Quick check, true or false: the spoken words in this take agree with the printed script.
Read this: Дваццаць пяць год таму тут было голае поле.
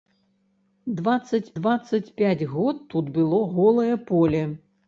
false